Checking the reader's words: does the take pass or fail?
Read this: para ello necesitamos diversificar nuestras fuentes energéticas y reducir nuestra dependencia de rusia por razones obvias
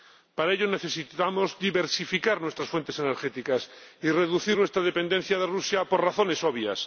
pass